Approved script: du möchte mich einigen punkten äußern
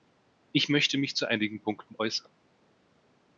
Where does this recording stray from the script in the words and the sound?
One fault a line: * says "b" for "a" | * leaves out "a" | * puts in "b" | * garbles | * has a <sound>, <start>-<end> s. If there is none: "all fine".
* says "ich" for "du"
* puts in "zu"